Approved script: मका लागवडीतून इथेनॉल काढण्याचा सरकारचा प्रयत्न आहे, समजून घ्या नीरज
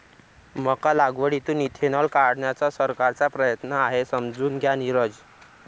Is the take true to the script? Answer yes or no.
yes